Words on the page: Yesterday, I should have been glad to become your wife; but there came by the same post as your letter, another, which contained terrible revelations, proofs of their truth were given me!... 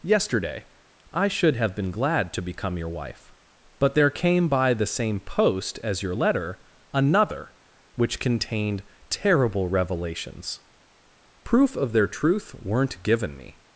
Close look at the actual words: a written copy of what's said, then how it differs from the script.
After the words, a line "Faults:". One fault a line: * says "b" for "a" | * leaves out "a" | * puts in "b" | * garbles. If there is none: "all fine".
Yesterday, I should have been glad to become your wife; but there came by the same post as your letter, another, which contained terrible revelations, proof of their truth weren't given me!...
Faults:
* says "proof" for "proofs"
* says "weren't" for "were"